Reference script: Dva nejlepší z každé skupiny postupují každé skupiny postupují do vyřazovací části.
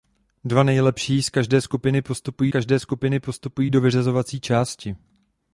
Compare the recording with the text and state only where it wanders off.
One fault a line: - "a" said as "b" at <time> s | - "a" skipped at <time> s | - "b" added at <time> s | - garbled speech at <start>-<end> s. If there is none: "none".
none